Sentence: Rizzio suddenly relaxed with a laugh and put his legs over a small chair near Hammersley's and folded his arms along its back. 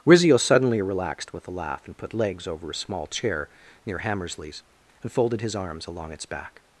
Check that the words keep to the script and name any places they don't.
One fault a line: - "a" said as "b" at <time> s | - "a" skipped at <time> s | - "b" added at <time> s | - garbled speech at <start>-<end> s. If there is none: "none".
- "his" skipped at 2.1 s